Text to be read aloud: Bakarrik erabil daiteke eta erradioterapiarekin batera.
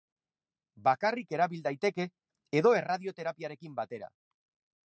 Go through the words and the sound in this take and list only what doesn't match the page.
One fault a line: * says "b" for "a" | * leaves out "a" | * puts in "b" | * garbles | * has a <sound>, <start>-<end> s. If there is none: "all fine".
* says "edo" for "eta"